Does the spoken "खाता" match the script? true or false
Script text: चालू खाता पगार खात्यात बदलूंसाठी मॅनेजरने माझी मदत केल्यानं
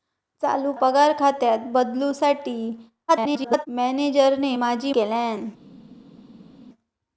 false